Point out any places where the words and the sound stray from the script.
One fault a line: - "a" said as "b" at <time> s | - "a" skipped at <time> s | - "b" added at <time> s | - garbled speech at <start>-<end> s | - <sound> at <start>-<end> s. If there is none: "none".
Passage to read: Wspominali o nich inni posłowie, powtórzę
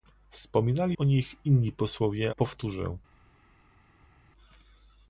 none